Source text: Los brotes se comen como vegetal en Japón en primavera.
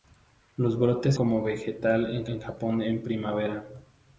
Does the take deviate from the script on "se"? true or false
true